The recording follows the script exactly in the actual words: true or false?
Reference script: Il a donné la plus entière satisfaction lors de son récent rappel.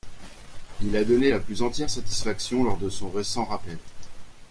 true